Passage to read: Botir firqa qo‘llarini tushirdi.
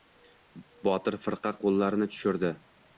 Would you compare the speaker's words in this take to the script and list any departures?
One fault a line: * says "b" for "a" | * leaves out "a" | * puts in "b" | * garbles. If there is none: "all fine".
all fine